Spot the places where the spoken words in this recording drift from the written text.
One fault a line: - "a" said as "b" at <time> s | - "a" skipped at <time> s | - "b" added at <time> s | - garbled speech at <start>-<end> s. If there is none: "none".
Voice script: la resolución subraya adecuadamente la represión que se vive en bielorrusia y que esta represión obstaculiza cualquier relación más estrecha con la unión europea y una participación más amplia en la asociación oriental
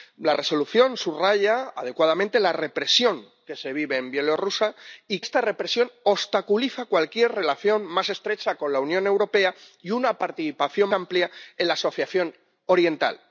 - "que" skipped at 5.2 s
- "más" skipped at 10.9 s